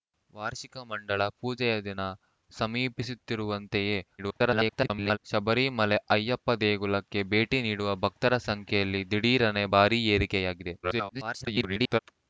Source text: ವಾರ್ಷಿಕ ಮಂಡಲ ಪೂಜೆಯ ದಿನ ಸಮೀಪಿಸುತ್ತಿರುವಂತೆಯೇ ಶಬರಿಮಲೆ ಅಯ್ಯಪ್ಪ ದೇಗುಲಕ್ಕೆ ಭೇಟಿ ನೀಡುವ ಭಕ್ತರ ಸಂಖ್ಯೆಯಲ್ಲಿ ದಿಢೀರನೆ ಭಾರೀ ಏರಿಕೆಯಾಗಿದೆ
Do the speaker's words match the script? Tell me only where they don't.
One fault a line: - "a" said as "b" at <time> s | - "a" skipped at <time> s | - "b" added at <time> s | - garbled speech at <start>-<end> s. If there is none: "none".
- garbled speech at 4.2-5.2 s
- garbled speech at 10.8-12.0 s